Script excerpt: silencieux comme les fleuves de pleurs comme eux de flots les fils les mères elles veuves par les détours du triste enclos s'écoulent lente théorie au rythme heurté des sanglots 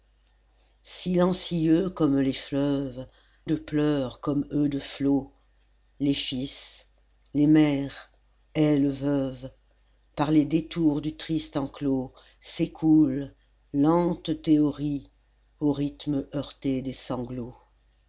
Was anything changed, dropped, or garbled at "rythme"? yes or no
no